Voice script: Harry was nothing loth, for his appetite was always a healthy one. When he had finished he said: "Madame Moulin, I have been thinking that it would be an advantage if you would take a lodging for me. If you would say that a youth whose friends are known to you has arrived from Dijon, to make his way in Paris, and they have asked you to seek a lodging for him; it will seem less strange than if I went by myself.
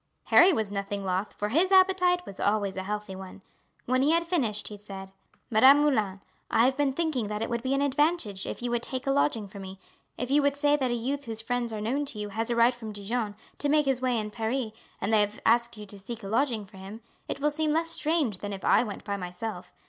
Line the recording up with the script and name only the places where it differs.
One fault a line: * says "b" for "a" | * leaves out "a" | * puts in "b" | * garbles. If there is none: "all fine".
all fine